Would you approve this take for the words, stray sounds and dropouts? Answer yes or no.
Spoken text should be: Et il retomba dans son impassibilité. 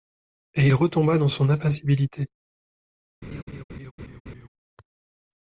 no